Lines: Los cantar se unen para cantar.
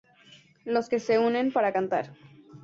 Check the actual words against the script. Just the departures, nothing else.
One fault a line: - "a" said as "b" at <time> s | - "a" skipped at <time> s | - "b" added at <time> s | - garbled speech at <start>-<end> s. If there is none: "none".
- "cantar" said as "que" at 0.9 s